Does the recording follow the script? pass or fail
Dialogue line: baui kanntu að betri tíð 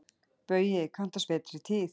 pass